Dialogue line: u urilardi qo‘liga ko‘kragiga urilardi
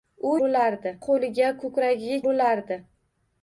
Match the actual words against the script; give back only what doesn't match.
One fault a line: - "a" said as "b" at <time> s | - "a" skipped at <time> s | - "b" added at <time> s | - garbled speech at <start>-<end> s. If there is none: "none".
none